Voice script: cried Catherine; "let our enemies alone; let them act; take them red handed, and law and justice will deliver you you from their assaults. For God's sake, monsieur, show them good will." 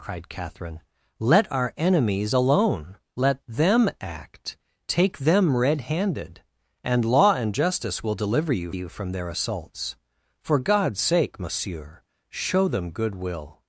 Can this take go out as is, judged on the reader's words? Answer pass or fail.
pass